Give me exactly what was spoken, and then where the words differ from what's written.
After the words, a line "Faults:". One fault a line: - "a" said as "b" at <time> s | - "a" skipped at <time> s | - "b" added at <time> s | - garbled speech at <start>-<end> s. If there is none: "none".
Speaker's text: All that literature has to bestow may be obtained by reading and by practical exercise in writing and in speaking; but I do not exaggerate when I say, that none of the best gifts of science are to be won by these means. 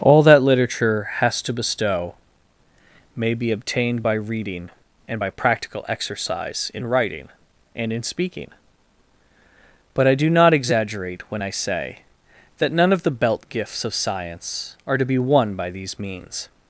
All that literature has to bestow may be obtained by reading and by practical exercise in writing and in speaking; but I do not exaggerate when I say, that none of the belt gifts of science are to be won by these means.
Faults:
- "best" said as "belt" at 13.1 s